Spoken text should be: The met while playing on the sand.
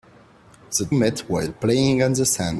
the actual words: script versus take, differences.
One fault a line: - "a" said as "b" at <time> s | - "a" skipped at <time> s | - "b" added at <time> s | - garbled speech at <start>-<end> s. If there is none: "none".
none